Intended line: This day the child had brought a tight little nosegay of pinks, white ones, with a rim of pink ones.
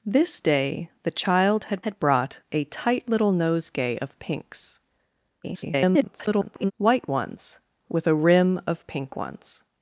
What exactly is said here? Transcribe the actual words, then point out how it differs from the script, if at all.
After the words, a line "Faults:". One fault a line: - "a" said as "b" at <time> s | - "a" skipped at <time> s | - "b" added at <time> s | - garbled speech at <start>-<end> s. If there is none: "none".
This day the child had had brought a tight little nosegay of pinks, [garbled] white ones, with a rim of pink ones.
Faults:
- "had" added at 1.8 s
- garbled speech at 5.4-6.7 s